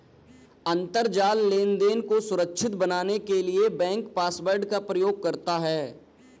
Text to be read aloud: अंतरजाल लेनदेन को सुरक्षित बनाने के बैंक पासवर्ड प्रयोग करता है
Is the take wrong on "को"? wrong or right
right